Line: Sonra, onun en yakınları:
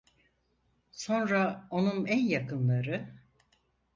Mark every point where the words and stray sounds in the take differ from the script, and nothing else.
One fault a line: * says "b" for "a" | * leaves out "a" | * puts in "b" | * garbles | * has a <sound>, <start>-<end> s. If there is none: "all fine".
all fine